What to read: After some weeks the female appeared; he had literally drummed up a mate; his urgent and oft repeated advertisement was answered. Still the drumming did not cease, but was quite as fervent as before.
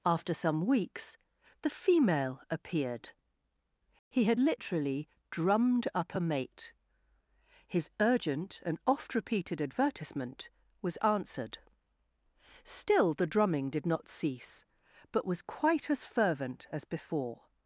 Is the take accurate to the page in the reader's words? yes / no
yes